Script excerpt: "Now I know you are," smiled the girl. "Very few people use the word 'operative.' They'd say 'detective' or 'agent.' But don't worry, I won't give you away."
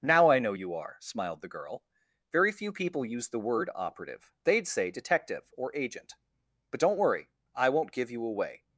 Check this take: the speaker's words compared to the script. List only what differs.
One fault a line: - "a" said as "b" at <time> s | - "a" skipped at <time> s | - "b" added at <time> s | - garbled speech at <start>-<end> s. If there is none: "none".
none